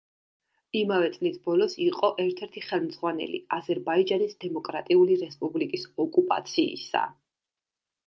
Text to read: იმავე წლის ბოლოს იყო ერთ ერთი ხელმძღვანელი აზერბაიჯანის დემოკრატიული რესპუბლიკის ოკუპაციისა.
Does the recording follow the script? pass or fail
pass